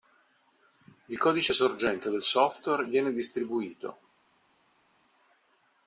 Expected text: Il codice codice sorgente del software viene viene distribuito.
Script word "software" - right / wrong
right